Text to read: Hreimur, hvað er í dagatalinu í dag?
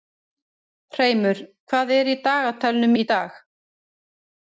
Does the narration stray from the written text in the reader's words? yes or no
no